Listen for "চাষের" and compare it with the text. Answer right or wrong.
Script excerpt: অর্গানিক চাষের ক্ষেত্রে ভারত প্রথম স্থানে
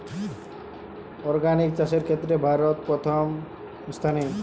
right